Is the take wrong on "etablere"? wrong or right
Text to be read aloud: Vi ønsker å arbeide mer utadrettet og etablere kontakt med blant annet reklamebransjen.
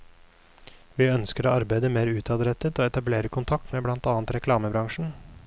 right